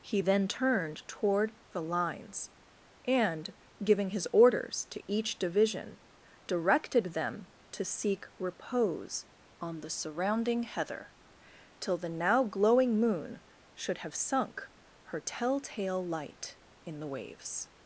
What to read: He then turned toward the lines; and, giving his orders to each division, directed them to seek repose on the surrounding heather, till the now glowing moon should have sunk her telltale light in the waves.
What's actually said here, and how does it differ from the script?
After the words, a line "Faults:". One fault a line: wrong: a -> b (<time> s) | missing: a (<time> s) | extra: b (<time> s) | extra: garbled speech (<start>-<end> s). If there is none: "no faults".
He then turned toward the lines; and, giving his orders to each division, directed them to seek repose on the surrounding heather, till the now glowing moon should have sunk her telltale light in the waves.
Faults:
no faults